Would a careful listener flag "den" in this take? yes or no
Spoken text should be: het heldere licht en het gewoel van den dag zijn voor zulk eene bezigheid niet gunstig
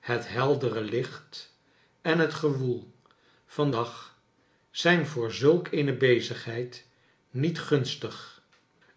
yes